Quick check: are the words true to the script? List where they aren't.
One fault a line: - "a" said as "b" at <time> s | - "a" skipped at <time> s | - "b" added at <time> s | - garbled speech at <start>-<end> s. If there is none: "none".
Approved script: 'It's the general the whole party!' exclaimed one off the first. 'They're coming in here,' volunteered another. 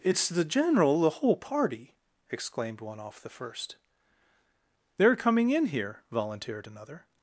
none